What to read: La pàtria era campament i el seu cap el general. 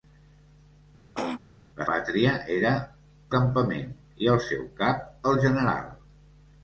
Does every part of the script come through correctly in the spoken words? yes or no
yes